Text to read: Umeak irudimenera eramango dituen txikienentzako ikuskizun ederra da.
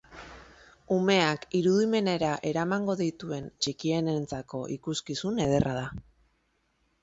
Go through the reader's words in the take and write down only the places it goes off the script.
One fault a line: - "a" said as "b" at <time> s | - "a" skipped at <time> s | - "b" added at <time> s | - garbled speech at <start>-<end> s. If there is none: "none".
none